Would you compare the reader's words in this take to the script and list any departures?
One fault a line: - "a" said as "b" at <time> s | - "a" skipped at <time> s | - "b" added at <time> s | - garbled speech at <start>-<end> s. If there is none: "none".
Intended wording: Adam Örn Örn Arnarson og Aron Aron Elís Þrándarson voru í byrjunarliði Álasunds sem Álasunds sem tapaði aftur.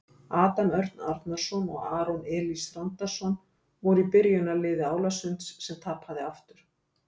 - "Örn" skipped at 1.0 s
- "Aron" skipped at 2.2 s
- "Álasunds sem" skipped at 5.8 s